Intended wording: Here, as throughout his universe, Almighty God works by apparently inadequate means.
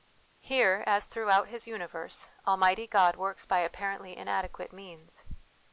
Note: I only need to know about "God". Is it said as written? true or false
true